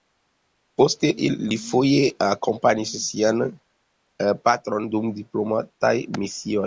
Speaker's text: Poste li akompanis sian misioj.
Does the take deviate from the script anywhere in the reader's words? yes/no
yes